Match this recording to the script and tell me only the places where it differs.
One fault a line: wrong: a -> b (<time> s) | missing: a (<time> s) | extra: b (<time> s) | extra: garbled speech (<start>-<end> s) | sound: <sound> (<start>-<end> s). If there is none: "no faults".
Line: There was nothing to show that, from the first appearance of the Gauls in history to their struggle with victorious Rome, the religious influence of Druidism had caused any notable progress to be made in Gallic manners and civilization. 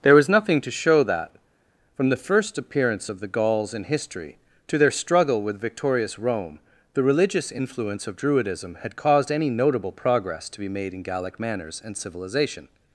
no faults